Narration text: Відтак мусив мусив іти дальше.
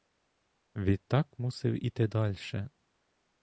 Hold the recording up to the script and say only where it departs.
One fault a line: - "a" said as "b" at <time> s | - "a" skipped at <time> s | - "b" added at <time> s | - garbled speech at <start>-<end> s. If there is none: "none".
- "мусив" skipped at 1.9 s